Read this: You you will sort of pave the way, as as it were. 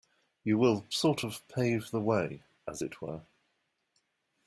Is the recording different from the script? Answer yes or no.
yes